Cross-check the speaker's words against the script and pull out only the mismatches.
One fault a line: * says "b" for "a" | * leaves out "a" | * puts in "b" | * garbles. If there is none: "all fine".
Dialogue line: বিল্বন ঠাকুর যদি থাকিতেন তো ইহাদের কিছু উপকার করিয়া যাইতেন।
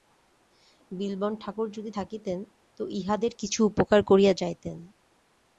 all fine